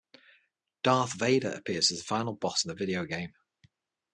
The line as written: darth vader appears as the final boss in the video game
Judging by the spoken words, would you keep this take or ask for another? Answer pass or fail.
pass